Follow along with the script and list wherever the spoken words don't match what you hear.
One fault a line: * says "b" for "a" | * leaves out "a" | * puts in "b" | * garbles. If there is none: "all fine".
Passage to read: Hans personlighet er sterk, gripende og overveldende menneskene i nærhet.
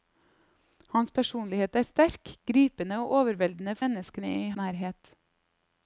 all fine